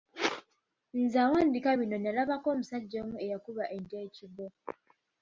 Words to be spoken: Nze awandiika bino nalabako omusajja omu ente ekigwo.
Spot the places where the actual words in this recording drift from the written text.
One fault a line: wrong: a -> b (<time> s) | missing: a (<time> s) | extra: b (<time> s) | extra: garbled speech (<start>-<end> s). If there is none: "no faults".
extra: eyakuba (3.2 s)